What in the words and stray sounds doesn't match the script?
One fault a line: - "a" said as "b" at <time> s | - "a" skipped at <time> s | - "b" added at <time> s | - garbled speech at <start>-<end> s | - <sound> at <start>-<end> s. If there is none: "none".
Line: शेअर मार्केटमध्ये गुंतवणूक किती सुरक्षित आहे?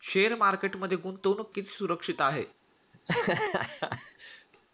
- laugh at 2.9-4.5 s